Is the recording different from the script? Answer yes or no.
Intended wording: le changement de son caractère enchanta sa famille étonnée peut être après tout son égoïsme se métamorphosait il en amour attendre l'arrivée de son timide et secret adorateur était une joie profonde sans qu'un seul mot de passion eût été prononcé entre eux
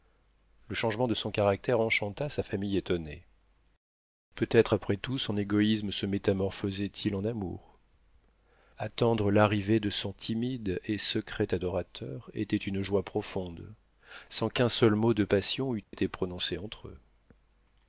no